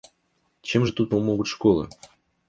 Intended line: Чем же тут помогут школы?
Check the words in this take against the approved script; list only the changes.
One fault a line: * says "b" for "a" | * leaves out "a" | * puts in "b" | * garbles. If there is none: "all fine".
all fine